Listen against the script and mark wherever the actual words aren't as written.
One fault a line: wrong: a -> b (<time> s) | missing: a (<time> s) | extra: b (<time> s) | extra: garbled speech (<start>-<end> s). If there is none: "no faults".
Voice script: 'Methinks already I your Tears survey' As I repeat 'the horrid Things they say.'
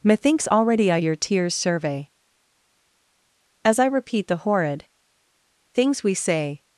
wrong: they -> we (6.0 s)